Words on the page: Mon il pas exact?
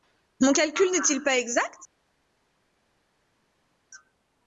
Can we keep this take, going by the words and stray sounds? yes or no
no